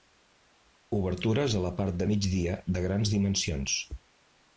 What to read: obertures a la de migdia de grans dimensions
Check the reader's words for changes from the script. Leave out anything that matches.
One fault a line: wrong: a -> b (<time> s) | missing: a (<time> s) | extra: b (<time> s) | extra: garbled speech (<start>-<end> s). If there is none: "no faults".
extra: part (1.8 s)